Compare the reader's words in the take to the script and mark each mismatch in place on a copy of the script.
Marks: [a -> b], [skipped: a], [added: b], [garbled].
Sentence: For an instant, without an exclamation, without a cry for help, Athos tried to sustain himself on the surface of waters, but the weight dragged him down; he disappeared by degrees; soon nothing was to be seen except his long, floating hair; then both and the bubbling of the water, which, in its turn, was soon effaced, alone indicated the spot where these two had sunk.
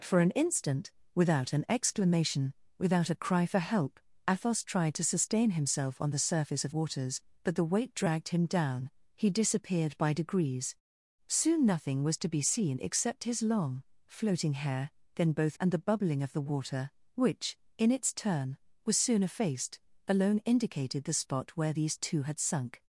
For an instant, without an exclamation, without a cry for help, Athos tried to sustain himself on the surface of waters, but the weight dragged him down; he disappeared by degrees; soon nothing was to be seen except his long, floating hair; then both and the bubbling of the water, which, in its turn, was soon effaced, alone indicated the spot where these two had sunk.